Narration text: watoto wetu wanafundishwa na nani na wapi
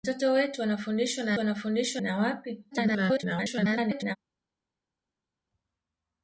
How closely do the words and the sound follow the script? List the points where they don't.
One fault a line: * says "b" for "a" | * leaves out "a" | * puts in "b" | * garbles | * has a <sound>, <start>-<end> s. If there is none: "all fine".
* says "wanafundishwa" for "nani"
* garbles